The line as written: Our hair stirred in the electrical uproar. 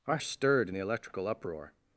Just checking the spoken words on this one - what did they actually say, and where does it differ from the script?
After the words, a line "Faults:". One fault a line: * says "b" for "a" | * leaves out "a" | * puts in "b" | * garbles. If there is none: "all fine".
Our stirred in the electrical uproar.
Faults:
* leaves out "hair"